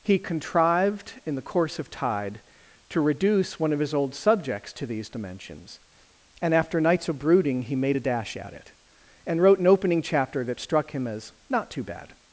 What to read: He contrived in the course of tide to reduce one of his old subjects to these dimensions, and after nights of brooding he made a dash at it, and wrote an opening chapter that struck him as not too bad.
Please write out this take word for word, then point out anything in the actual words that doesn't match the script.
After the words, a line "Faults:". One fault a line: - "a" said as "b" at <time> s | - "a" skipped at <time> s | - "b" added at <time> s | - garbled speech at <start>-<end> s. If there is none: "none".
He contrived in the course of tide to reduce one of his old subjects to these dimensions, and after nights of brooding he made a dash at it, and wrote an opening chapter that struck him as not too bad.
Faults:
none